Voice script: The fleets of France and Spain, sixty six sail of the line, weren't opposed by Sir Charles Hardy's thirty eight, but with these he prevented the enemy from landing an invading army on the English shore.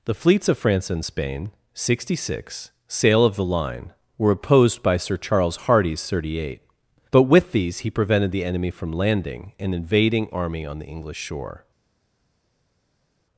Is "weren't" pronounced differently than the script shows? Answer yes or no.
yes